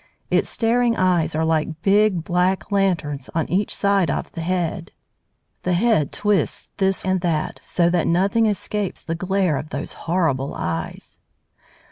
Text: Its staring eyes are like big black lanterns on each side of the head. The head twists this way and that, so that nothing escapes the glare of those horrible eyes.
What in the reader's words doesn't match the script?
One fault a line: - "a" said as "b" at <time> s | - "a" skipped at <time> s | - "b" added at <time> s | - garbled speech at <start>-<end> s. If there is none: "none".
- "way" skipped at 7.1 s